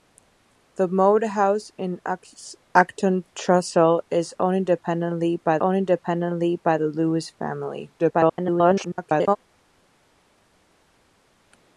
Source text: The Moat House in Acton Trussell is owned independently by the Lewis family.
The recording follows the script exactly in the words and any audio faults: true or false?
false